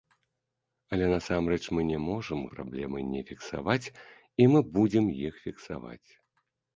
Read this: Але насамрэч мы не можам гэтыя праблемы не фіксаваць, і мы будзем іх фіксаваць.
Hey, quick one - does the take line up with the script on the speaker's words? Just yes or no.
no